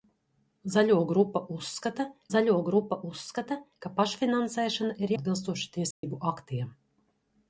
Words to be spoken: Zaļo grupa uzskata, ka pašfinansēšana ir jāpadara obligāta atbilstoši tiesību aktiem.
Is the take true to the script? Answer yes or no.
no